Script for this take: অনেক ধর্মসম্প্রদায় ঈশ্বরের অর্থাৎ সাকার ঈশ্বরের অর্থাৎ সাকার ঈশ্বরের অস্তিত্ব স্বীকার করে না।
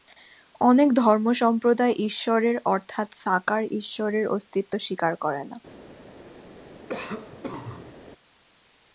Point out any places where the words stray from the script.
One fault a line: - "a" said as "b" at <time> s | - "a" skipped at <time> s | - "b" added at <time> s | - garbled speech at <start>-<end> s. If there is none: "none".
- "অর্থাৎ সাকার ঈশ্বরের" skipped at 4.2 s